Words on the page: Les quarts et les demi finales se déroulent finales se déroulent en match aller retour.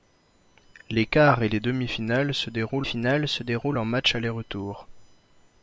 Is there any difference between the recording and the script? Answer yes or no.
no